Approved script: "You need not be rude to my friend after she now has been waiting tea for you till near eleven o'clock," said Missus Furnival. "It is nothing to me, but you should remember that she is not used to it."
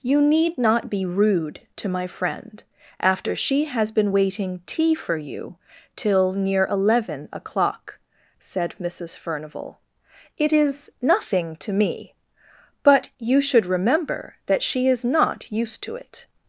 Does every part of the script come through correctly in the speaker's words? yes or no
no